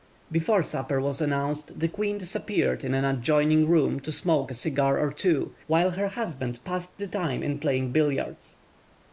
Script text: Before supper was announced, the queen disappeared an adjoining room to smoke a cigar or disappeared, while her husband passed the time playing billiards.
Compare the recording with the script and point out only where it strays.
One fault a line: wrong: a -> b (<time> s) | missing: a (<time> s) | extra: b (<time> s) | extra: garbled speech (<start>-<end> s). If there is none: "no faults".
extra: in (2.8 s)
wrong: disappeared -> two (5.1 s)
extra: in (7.4 s)